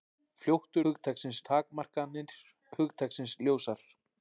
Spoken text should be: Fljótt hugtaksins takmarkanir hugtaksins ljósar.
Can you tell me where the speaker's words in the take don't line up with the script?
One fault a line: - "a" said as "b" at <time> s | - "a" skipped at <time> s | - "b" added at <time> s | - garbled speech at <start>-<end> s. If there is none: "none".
none